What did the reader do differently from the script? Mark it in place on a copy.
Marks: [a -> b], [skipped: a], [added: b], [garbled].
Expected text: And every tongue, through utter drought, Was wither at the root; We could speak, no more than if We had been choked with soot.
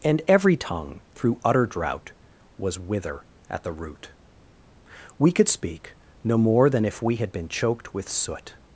And every tongue, through utter drought, Was wither at the root; We could speak, no more than if We had been choked with soot.